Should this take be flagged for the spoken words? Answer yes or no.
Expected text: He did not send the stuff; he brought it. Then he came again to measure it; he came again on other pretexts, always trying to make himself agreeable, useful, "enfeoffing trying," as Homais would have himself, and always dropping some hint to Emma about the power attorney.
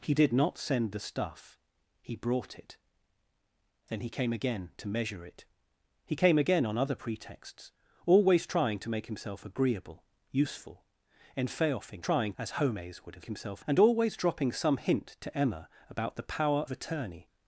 no